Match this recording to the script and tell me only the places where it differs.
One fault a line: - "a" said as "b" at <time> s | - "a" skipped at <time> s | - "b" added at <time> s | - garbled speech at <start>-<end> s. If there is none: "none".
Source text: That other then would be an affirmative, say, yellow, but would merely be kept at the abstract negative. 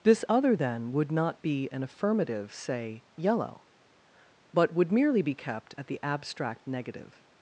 - "That" said as "This" at 0.0 s
- "not" added at 1.1 s